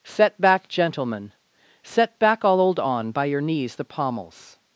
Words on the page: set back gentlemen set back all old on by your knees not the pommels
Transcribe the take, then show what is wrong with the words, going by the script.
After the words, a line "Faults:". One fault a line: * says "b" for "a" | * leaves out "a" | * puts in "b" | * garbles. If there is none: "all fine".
set back gentlemen set back all old on by your knees the pommels
Faults:
* leaves out "not"